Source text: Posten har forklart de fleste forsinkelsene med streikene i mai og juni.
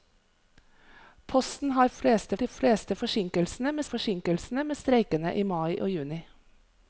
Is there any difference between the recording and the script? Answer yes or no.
yes